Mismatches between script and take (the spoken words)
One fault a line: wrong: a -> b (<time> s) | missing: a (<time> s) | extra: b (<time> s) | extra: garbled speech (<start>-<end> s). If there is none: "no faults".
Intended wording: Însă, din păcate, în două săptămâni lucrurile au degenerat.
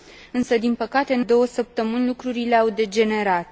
no faults